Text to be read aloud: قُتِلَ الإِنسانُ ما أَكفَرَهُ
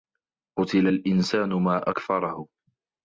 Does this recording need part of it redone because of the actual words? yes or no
no